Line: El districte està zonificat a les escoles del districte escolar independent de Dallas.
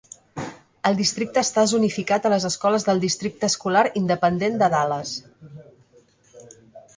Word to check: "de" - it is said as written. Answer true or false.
true